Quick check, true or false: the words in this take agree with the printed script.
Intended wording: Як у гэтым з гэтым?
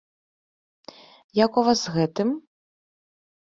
false